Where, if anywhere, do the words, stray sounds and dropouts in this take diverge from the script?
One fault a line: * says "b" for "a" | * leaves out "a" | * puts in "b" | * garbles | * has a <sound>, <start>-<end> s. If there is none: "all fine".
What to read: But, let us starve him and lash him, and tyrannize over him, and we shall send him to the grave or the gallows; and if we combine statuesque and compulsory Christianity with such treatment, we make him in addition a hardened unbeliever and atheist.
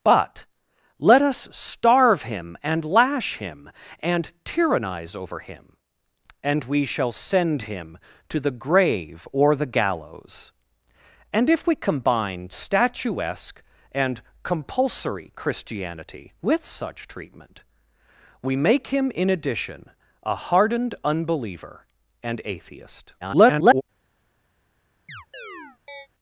* garbles
* has a chirp, 25.1-26.1 s